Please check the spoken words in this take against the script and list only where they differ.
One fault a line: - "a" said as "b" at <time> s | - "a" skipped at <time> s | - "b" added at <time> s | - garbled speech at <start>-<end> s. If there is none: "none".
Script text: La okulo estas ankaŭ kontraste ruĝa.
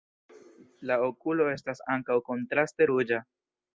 none